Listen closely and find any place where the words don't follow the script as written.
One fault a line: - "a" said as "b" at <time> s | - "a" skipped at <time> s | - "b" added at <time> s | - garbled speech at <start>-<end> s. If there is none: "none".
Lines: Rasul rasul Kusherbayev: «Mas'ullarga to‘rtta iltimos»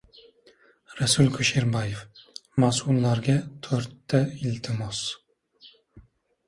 - "rasul" skipped at 1.3 s